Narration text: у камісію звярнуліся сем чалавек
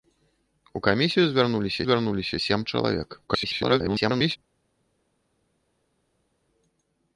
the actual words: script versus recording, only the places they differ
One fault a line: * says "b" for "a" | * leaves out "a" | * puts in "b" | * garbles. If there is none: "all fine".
* puts in "звярнуліся"
* garbles